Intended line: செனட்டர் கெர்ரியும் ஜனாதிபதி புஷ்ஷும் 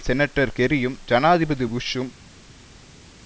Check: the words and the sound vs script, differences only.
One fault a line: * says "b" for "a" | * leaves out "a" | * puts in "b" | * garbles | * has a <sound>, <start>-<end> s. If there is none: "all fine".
all fine